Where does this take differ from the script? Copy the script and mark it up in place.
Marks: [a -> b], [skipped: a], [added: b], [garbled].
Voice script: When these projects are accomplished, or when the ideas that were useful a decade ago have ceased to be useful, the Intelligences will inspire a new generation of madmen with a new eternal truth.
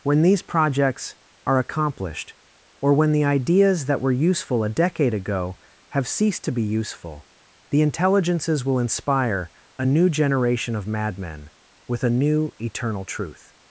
When these projects are accomplished, or when the ideas that were useful a decade ago have ceased to be useful, the Intelligences will inspire a new generation of madmen with a new eternal truth.